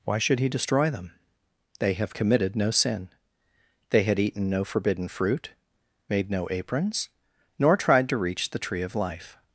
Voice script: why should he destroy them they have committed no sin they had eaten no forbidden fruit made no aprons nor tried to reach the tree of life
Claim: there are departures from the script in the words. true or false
false